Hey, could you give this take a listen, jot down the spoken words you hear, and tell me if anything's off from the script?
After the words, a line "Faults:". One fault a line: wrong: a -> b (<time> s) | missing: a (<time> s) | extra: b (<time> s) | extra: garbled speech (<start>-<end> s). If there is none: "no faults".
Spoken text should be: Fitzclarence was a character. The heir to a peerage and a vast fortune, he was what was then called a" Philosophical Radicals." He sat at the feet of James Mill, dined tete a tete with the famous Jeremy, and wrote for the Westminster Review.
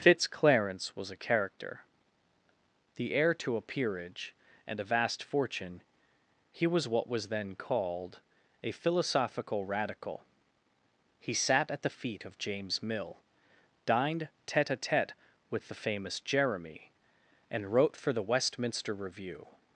Fitzclarence was a character. The heir to a peerage and a vast fortune, he was what was then called a" Philosophical Radical." He sat at the feet of James Mill, dined tete a tete with the famous Jeremy, and wrote for the Westminster Review.
Faults:
wrong: Radicals -> Radical (9.6 s)